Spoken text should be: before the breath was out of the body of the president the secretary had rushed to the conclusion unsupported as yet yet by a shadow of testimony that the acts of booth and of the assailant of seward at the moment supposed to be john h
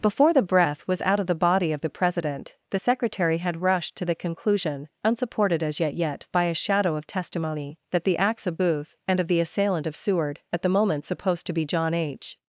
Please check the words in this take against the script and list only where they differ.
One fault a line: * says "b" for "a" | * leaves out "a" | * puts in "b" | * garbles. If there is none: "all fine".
all fine